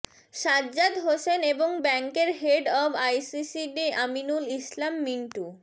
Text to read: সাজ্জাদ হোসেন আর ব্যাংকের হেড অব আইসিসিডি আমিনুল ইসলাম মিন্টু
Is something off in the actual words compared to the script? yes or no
yes